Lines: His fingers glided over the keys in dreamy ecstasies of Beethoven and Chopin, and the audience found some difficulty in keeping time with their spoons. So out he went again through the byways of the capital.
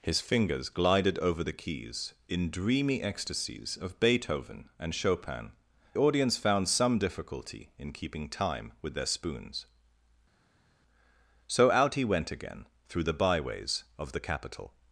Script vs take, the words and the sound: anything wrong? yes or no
yes